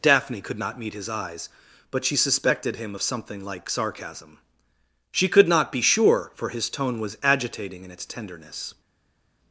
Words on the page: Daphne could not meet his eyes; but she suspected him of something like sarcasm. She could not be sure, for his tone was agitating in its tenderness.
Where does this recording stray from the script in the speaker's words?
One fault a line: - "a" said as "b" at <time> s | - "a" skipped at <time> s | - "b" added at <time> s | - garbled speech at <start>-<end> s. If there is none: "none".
none